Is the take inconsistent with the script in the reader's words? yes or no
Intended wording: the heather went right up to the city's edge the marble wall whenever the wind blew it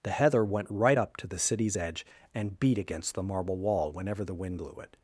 yes